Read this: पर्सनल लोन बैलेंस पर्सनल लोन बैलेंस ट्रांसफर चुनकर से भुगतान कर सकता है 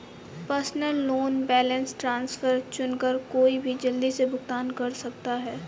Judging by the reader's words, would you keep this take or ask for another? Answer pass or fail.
fail